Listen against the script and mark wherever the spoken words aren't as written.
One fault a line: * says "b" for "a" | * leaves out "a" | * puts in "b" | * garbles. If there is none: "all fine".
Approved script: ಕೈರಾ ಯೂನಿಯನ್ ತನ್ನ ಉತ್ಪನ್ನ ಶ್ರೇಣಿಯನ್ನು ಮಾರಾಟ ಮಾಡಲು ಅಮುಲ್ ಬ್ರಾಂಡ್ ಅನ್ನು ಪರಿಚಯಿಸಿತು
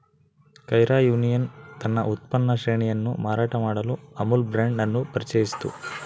all fine